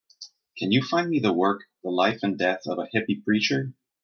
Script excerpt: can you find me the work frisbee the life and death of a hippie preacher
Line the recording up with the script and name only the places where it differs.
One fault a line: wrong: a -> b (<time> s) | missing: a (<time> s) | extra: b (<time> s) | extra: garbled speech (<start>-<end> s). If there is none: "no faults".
missing: frisbee (1.6 s)